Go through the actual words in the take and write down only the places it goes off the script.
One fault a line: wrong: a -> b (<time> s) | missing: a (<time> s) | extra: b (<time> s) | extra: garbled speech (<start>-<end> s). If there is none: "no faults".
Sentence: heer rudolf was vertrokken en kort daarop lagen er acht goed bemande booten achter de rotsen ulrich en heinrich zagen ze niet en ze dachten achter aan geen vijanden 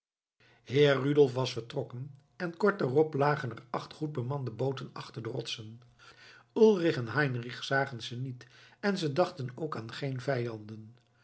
wrong: achter -> ook (9.5 s)